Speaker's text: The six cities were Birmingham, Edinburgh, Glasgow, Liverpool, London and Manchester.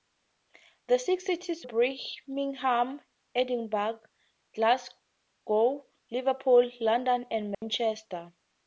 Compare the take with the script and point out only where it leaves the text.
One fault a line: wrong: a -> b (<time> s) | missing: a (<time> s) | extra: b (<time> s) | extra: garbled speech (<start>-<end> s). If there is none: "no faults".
missing: were (1.7 s)